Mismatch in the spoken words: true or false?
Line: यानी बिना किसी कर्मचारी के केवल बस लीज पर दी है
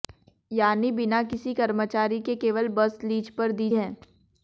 false